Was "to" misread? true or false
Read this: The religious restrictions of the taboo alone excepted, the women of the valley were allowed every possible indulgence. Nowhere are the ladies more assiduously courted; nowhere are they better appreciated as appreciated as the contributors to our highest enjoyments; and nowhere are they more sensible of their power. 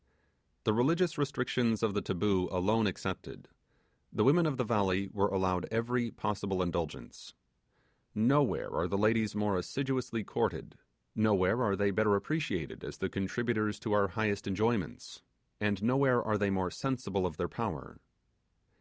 false